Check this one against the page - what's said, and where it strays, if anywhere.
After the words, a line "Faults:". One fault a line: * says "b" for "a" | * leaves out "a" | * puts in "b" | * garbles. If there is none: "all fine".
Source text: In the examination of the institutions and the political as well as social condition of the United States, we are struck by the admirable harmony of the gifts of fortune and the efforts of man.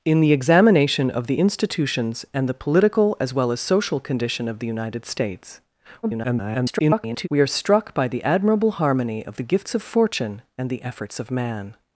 In the examination of the institutions and the political as well as social condition of the United States, [garbled] we are struck by the admirable harmony of the gifts of fortune and the efforts of man.
Faults:
* garbles